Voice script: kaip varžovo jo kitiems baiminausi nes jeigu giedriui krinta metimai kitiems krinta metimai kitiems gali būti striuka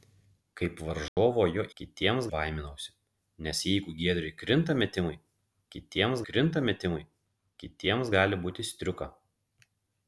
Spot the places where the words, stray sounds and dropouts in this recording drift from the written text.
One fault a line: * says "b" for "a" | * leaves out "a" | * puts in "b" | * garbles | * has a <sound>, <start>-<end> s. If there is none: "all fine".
* has a dropout, 1.1-1.2 s